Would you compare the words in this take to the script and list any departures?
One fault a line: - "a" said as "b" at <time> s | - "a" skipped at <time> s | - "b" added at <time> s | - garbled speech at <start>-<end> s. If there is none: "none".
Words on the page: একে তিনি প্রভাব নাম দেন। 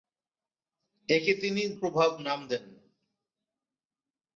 none